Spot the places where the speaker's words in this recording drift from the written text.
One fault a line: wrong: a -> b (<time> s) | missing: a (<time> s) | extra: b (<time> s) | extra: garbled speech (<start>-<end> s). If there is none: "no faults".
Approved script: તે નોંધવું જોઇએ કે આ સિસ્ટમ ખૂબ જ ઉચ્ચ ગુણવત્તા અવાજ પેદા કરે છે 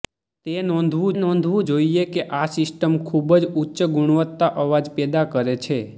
extra: નોંધવું (1.2 s)